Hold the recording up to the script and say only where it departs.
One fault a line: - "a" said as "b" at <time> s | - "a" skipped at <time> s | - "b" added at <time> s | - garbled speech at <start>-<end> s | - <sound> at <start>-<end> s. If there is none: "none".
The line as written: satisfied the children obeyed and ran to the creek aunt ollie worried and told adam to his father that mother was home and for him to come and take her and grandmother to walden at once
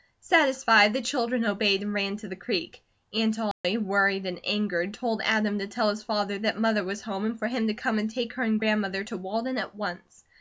- dropout at 3.5-3.6 s
- "angered" added at 4.4 s
- "tell" added at 5.7 s